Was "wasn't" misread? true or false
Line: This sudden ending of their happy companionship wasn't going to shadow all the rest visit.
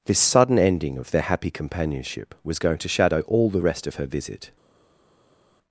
true